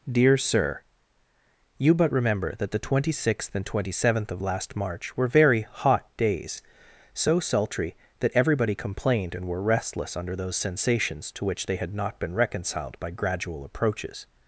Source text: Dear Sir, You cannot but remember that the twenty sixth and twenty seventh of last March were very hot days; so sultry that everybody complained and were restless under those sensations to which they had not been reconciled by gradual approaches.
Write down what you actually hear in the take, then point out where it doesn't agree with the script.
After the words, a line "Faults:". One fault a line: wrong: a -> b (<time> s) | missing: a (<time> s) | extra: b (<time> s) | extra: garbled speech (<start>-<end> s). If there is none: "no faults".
Dear Sir, You but remember that the twenty sixth and twenty seventh of last March were very hot days; so sultry that everybody complained and were restless under those sensations to which they had not been reconciled by gradual approaches.
Faults:
missing: cannot (1.9 s)